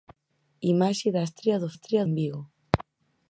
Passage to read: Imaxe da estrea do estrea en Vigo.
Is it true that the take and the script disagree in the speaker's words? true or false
false